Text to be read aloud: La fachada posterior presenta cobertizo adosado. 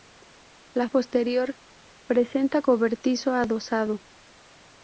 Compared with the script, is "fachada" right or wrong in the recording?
wrong